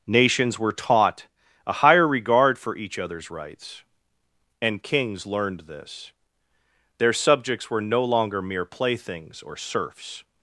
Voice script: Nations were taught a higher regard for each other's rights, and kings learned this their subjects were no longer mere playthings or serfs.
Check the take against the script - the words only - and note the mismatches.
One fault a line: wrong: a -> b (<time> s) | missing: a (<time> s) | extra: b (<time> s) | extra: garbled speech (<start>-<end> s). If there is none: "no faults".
no faults